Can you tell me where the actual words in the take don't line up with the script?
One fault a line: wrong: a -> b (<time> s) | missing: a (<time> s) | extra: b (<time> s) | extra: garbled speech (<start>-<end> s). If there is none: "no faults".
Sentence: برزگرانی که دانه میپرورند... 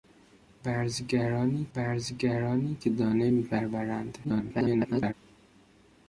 extra: برزگرانی (1.7 s)
extra: garbled speech (4.2-5.1 s)